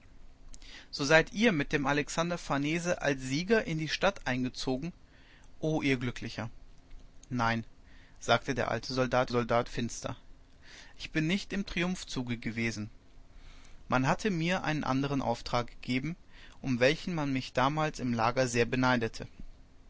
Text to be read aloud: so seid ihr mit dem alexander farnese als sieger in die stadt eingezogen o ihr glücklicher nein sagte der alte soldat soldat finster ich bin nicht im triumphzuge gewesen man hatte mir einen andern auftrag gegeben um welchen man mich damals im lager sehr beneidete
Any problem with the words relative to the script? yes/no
no